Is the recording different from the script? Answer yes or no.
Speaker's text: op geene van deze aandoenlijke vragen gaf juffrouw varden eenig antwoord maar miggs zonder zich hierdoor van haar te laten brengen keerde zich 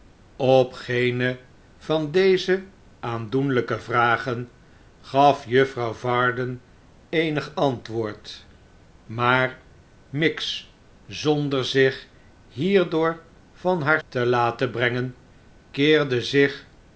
no